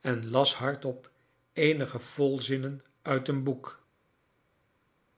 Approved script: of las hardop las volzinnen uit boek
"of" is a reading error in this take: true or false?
true